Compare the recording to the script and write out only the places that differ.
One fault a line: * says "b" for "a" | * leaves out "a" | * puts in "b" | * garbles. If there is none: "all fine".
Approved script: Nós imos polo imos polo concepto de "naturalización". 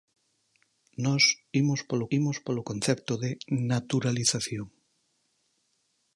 all fine